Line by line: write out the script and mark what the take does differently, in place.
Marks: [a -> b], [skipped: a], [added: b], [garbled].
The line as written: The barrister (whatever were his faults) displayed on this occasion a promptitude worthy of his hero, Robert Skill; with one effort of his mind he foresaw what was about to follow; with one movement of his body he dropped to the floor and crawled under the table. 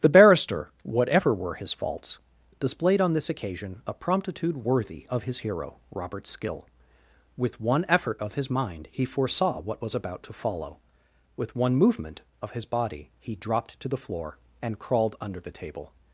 The barrister (whatever were his faults) displayed on this occasion a promptitude worthy of his hero, Robert Skill; with one effort of his mind he foresaw what was about to follow; with one movement of his body he dropped to the floor and crawled under the table.